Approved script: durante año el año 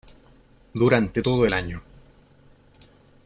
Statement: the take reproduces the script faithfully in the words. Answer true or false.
false